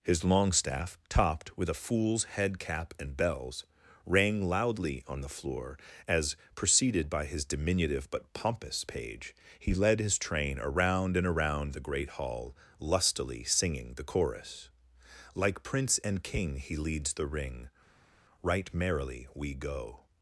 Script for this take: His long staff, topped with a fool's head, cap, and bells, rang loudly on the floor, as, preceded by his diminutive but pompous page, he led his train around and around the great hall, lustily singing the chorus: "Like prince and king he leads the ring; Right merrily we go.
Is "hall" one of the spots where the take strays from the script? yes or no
no